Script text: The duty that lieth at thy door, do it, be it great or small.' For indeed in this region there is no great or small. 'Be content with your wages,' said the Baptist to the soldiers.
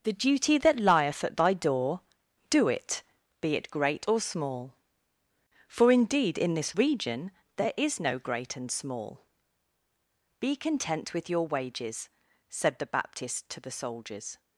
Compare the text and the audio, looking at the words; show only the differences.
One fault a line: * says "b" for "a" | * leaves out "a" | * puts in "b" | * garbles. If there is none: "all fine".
* says "and" for "or"